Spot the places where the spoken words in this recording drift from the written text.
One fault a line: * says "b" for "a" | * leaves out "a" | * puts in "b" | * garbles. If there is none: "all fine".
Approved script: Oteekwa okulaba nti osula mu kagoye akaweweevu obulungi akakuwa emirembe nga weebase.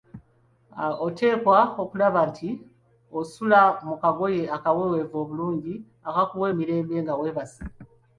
all fine